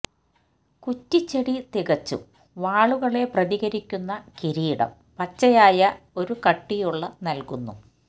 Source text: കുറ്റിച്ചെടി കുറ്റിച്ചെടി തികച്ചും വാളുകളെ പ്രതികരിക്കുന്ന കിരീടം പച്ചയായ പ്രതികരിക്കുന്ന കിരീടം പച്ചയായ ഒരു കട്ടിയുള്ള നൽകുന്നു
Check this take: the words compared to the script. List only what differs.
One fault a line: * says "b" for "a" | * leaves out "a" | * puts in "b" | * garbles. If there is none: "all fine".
* leaves out "കുറ്റിച്ചെടി"
* leaves out "പ്രതികരിക്കുന്ന കിരീടം പച്ചയായ"